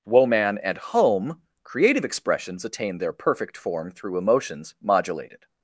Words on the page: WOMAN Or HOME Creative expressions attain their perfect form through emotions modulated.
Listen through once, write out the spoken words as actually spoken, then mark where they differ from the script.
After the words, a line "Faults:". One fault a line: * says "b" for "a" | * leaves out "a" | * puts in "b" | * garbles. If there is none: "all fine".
WOMAN AND HOME Creative expressions attain their perfect form through emotions modulated.
Faults:
* says "AND" for "Or"